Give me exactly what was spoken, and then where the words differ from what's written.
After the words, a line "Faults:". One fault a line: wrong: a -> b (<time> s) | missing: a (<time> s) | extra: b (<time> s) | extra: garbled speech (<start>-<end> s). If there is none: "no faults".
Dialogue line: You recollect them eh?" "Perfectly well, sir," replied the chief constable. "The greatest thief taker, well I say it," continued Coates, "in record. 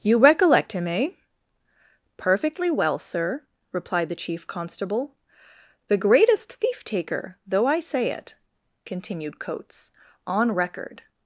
You recollect him eh?" "Perfectly well, sir," replied the chief constable. "The greatest thief taker, though I say it," continued Coates, "on record.
Faults:
wrong: them -> him (0.7 s)
wrong: well -> though (7.5 s)
wrong: in -> on (10.2 s)